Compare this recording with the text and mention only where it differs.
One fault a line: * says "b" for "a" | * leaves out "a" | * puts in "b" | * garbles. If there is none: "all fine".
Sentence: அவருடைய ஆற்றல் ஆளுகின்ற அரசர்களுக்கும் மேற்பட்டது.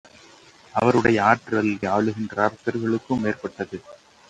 all fine